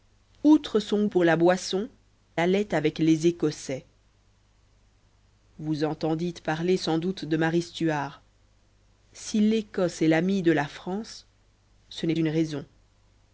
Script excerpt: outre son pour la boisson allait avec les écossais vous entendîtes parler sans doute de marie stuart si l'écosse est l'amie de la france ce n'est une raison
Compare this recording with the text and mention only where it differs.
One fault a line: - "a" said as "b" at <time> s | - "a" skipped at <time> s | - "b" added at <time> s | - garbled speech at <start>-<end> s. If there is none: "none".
none